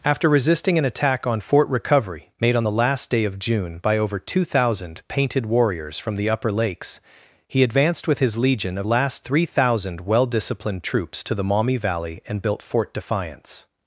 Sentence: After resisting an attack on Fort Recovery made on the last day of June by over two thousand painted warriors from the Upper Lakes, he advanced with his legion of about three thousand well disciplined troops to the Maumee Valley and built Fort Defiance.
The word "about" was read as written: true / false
false